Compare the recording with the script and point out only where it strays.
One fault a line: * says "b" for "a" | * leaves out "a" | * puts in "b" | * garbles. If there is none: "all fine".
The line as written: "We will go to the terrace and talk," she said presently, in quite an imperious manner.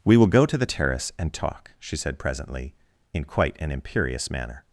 all fine